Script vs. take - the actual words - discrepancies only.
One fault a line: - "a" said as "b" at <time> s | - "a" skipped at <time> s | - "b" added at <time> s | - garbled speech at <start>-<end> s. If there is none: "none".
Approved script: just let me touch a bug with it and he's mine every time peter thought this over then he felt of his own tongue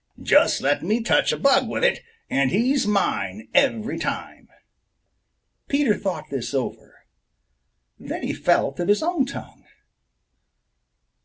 none